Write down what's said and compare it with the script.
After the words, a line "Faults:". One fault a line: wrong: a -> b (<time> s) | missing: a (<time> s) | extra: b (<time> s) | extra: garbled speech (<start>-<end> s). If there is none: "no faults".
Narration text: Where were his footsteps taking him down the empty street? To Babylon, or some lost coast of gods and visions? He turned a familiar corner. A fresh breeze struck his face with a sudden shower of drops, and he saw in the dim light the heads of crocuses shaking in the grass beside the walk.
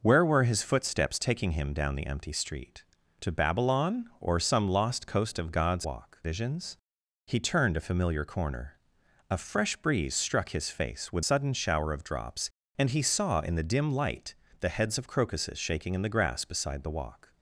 Where were his footsteps taking him down the empty street? To Babylon, or some lost coast of gods walk visions? He turned a familiar corner. A fresh breeze struck his face with sudden shower of drops, and he saw in the dim light the heads of crocuses shaking in the grass beside the walk.
Faults:
wrong: and -> walk (5.9 s)
missing: a (11.3 s)